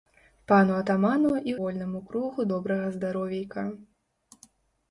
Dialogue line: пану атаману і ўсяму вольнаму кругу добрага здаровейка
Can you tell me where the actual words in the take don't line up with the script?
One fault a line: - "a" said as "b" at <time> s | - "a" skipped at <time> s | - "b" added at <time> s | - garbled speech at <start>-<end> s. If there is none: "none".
- "ўсяму" skipped at 1.5 s